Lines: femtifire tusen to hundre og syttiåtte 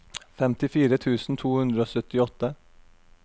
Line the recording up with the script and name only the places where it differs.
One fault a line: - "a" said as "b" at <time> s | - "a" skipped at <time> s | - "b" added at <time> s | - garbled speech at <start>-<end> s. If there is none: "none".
none